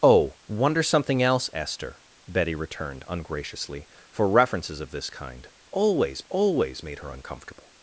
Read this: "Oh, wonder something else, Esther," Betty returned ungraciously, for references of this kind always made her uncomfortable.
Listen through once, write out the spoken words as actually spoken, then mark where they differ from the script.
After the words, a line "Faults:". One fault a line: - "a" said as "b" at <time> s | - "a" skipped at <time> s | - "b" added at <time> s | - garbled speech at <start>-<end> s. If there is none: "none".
"Oh, wonder something else, Esther," Betty returned ungraciously, for references of this kind always always made her uncomfortable.
Faults:
- "always" added at 6.3 s